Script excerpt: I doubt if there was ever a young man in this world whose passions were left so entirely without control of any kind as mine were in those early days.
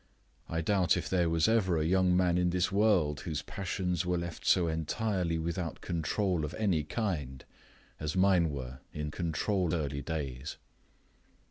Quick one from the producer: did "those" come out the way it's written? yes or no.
no